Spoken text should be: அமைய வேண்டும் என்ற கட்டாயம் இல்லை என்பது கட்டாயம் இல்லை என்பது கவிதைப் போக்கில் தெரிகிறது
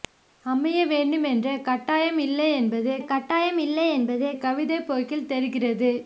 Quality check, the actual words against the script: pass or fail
pass